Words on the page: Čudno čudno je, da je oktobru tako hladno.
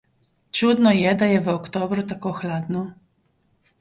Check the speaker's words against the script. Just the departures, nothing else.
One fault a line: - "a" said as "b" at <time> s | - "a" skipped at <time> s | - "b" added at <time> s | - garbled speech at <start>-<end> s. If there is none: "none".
- "čudno" skipped at 0.9 s
- "v" added at 1.4 s